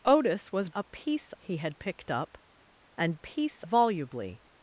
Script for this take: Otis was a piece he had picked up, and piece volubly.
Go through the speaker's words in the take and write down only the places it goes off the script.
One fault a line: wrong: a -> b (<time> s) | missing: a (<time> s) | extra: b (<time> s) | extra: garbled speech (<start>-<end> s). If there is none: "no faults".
no faults